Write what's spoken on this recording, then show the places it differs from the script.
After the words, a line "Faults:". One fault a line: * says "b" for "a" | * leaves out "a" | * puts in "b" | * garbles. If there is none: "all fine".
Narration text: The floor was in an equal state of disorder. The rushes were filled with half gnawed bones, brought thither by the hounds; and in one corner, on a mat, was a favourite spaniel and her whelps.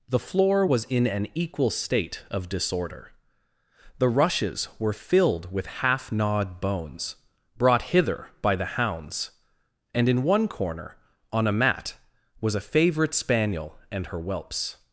The floor was in an equal state of disorder. The rushes were filled with half gnawed bones, brought hither by the hounds; and in one corner, on a mat, was a favourite spaniel and her whelps.
Faults:
* says "hither" for "thither"